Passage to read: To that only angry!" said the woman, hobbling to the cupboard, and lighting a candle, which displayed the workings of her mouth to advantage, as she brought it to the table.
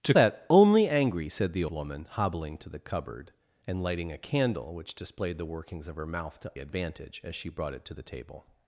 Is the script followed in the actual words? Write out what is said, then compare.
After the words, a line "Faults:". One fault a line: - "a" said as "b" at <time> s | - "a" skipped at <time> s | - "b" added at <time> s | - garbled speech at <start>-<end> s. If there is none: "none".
To that only angry!" said the woman, hobbling to the cupboard, and lighting a candle, which displayed the workings of her mouth to advantage, as she brought it to the table.
Faults:
none